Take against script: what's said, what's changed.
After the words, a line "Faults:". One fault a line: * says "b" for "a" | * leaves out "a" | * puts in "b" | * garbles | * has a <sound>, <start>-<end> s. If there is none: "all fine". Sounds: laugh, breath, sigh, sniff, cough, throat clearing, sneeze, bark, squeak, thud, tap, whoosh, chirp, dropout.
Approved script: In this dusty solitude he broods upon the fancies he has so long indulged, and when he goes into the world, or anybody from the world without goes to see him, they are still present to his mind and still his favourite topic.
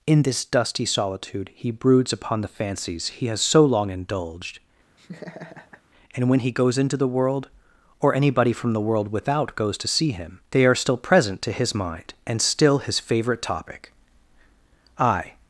In this dusty solitude he broods upon the fancies he has so long indulged, and when he goes into the world, or anybody from the world without goes to see him, they are still present to his mind and still his favourite topic. I
Faults:
* has a laugh, 5.0-5.8 s
* puts in "I"